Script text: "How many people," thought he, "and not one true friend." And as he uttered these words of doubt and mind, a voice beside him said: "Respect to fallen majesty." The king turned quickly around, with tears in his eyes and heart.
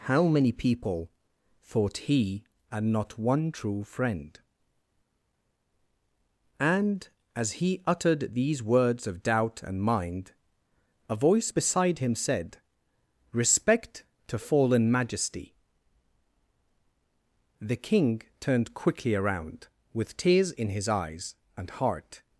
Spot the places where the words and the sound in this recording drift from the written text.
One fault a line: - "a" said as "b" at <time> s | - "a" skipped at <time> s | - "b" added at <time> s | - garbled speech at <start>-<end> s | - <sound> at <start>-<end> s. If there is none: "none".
none